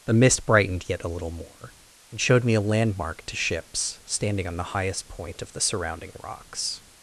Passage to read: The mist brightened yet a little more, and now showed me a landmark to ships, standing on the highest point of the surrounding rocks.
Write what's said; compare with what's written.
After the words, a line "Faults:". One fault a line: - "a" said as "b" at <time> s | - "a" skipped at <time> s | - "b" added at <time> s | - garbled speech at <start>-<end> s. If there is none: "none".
The mist brightened yet a little more, and showed me a landmark to ships, standing on the highest point of the surrounding rocks.
Faults:
- "now" skipped at 2.2 s